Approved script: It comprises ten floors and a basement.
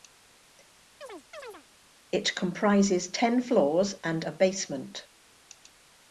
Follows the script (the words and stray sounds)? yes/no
no